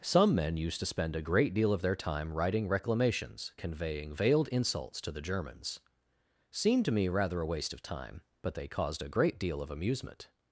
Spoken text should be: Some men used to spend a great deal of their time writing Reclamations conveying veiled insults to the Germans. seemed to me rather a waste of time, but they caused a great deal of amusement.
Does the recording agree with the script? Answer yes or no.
yes